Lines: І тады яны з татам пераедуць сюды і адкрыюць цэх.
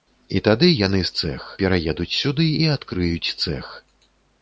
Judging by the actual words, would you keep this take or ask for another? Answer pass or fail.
fail